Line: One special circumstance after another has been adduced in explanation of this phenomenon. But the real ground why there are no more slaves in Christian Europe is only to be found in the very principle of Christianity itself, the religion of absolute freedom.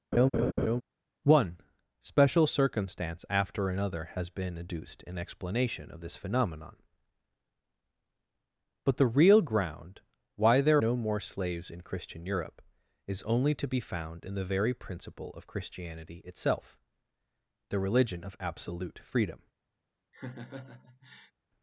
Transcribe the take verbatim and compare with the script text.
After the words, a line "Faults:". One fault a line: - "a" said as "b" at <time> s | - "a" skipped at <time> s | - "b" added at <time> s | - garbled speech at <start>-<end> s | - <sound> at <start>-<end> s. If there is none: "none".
One special circumstance after another has been adduced in explanation of this phenomenon. But the real ground why there no more slaves in Christian Europe is only to be found in the very principle of Christianity itself, the religion of absolute freedom.
Faults:
- laugh at 0.1-0.8 s
- "are" skipped at 10.8 s
- laugh at 20.1-21.3 s